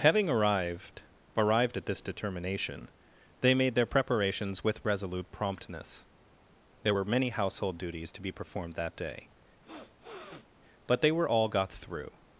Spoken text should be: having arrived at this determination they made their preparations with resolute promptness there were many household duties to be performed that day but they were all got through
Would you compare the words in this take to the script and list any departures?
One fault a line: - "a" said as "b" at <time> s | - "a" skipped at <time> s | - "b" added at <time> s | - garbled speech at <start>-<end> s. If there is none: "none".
- "arrived" added at 1.4 s